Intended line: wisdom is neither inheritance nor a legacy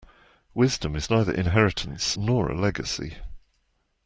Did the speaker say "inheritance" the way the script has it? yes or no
yes